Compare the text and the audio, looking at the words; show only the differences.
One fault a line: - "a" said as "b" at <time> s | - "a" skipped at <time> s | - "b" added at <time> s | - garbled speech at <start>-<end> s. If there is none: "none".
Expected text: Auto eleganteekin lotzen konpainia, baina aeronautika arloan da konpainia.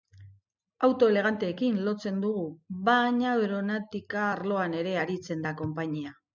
- "konpainia" said as "dugu" at 2.2 s
- "ere aritzen" added at 4.8 s